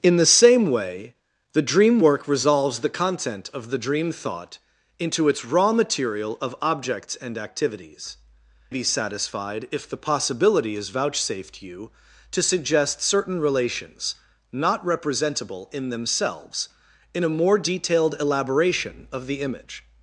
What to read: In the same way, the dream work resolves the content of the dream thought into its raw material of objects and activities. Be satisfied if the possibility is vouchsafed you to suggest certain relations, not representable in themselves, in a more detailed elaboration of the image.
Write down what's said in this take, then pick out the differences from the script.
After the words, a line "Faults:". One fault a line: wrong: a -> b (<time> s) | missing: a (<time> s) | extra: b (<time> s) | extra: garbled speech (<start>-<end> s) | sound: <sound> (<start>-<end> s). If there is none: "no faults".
In the same way, the dream work resolves the content of the dream thought into its raw material of objects and activities. Be satisfied if the possibility is vouchsafed you to suggest certain relations, not representable in themselves, in a more detailed elaboration of the image.
Faults:
no faults